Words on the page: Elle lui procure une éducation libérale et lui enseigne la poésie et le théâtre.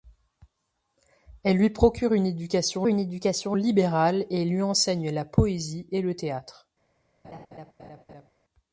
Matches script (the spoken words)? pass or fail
fail